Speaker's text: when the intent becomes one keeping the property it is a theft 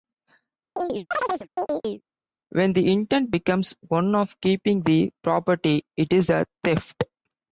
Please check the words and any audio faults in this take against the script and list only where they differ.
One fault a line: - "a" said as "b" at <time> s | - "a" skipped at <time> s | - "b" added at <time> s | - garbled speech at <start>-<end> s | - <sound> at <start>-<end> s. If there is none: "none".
- chirp at 0.8-2.0 s
- "of" added at 4.1 s